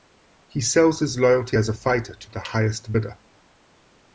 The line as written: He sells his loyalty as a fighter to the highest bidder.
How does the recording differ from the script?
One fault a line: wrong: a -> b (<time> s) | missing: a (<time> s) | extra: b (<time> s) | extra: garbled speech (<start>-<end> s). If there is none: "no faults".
no faults